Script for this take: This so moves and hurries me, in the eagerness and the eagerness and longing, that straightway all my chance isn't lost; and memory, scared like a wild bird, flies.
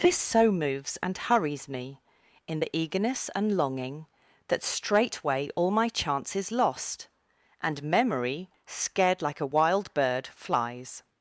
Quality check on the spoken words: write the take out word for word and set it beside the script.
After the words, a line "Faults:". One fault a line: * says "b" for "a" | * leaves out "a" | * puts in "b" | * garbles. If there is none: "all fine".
This so moves and hurries me, in the eagerness and longing, that straightway all my chance is lost; and memory, scared like a wild bird, flies.
Faults:
* leaves out "the eagerness and"
* says "is" for "isn't"